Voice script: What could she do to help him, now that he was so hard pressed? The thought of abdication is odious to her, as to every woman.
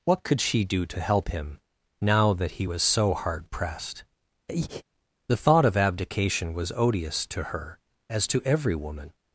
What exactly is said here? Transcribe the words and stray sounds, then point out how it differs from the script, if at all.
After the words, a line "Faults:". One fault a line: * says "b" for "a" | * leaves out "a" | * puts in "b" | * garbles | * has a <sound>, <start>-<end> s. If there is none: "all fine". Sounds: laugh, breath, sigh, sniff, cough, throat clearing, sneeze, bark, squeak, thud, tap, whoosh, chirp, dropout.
What could she do to help him, now that he was so hard pressed? The thought of abdication was odious to her, as to every woman.
Faults:
* has a breath, 4.5-4.8 s
* says "was" for "is"